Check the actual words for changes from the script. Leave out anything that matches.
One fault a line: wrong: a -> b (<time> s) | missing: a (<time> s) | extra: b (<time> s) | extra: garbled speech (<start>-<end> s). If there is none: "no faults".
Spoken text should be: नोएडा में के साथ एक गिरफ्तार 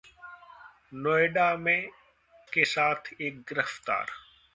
no faults